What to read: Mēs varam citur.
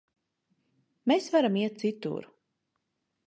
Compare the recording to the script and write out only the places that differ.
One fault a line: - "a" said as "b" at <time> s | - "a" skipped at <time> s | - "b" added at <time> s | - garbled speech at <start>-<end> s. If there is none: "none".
- "iet" added at 1.6 s